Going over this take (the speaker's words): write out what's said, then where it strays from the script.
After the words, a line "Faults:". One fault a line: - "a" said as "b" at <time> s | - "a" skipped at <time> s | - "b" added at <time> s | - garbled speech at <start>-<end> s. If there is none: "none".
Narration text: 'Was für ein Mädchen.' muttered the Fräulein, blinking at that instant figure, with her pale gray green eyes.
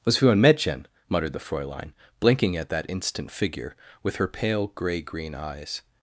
'Was für ein Mädchen.' muttered the Fräulein, blinking at that instant figure, with her pale gray green eyes.
Faults:
none